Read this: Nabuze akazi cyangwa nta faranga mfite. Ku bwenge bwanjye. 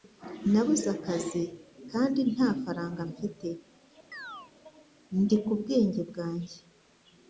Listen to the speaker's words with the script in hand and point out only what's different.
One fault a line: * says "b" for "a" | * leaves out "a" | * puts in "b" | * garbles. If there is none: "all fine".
* says "kandi" for "cyangwa"
* puts in "Ndi"